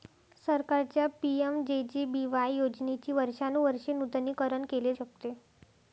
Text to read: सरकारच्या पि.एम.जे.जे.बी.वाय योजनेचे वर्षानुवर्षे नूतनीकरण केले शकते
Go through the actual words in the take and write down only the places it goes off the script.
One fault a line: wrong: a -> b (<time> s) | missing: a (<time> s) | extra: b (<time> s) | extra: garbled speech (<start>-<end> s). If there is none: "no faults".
no faults